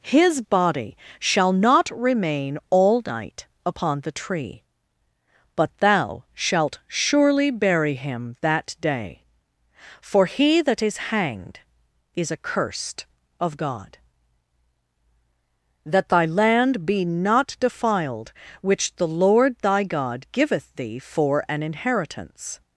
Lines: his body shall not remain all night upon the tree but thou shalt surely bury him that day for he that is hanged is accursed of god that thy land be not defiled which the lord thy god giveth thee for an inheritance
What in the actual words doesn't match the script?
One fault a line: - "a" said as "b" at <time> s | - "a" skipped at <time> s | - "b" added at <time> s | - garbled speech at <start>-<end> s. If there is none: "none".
none